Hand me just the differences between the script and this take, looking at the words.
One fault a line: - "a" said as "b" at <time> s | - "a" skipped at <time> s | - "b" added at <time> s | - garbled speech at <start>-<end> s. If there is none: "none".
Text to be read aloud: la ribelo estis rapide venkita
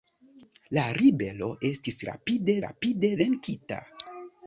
- "rapide" added at 2.6 s